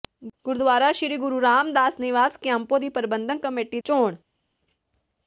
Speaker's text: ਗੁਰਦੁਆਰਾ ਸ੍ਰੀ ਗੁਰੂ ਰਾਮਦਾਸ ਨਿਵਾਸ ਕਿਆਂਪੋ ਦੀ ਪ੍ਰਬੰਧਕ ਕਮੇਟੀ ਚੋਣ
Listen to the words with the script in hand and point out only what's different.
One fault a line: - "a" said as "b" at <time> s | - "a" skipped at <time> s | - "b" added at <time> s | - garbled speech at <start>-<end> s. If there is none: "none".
none